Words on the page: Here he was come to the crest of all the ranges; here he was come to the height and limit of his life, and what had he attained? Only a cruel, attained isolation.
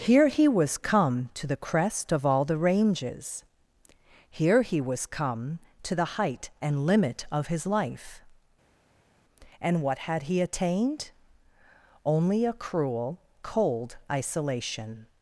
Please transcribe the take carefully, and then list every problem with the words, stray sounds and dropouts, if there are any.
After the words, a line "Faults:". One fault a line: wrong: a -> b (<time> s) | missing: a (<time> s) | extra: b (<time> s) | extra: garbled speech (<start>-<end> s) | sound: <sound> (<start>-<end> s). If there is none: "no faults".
Here he was come to the crest of all the ranges; here he was come to the height and limit of his life, and what had he attained? Only a cruel, cold isolation.
Faults:
wrong: attained -> cold (13.4 s)